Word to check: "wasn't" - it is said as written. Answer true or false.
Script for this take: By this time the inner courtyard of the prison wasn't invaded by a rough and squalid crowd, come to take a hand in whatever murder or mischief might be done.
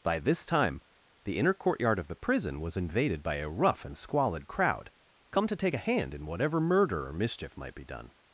false